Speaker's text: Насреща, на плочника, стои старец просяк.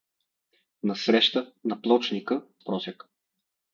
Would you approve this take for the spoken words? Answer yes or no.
no